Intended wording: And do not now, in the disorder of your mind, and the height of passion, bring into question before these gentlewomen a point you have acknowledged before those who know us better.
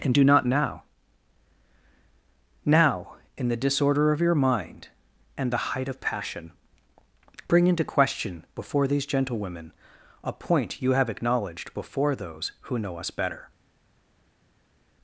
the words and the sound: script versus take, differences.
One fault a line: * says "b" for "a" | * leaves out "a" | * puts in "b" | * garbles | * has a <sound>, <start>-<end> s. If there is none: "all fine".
* puts in "now"